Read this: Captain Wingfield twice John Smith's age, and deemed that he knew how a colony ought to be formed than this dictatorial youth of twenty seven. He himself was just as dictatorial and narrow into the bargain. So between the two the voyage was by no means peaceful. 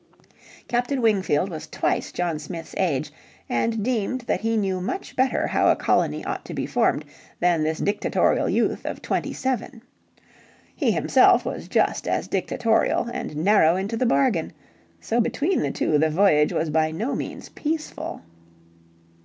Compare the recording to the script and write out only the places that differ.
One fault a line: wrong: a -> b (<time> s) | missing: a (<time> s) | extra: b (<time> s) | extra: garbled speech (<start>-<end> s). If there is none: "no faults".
extra: was (1.5 s)
extra: much better (4.8 s)